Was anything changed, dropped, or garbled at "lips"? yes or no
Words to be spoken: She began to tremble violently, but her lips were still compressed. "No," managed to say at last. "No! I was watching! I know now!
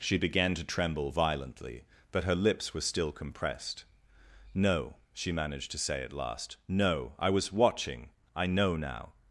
no